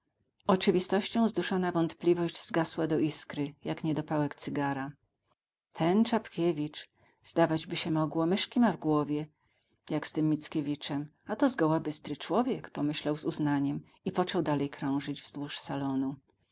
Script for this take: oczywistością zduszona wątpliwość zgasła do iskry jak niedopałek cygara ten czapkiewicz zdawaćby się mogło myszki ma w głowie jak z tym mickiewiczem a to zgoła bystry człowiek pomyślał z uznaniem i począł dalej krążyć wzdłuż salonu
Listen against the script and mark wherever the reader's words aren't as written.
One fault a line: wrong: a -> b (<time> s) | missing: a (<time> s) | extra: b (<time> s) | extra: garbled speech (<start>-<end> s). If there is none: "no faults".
no faults